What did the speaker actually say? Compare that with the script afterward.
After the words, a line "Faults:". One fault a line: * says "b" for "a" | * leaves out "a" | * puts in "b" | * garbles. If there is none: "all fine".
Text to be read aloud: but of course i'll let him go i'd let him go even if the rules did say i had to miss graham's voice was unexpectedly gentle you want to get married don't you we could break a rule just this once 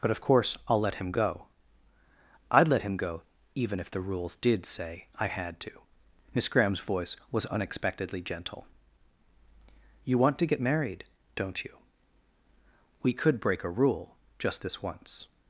but of course i'll let him go i'd let him go even if the rules did say i had to miss graham's voice was unexpectedly gentle you want to get married don't you we could break a rule just this once
Faults:
all fine